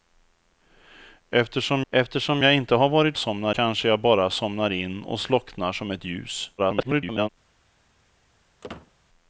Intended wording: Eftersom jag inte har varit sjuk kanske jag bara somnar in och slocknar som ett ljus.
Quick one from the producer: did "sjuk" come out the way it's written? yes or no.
no